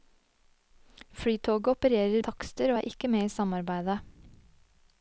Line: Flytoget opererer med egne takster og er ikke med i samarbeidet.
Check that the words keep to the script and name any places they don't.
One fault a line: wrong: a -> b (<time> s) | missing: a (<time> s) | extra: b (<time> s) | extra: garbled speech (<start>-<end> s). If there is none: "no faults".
missing: med egne (2.2 s)